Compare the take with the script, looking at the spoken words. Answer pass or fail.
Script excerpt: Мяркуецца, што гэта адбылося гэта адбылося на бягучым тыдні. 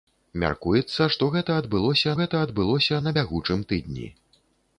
pass